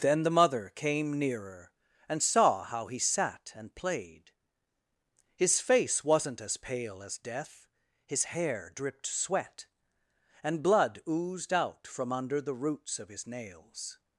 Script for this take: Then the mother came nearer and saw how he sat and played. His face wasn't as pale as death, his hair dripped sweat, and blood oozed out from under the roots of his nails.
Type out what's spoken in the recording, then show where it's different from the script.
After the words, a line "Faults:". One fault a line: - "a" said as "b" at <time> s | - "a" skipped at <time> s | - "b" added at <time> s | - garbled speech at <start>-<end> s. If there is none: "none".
Then the mother came nearer and saw how he sat and played. His face wasn't as pale as death, his hair dripped sweat, and blood oozed out from under the roots of his nails.
Faults:
none